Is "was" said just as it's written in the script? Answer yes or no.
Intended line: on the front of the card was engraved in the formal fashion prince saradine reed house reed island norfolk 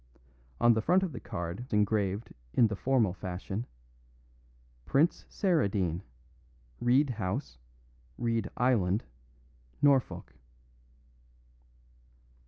no